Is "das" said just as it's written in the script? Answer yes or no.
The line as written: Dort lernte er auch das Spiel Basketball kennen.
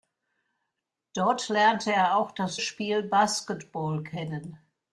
yes